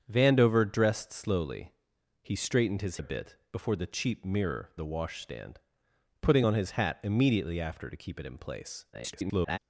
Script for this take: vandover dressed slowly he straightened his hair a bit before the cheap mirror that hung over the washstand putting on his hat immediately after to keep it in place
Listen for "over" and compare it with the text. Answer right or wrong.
wrong